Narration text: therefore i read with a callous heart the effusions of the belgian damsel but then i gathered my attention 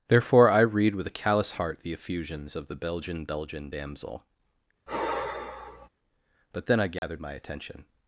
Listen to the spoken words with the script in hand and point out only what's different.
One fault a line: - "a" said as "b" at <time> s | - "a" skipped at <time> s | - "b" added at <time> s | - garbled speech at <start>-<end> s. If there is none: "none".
- "belgian" added at 3.2 s